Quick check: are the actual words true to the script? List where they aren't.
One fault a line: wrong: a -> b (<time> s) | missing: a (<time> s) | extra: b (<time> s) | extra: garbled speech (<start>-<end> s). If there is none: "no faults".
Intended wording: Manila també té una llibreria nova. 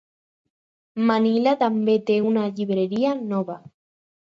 no faults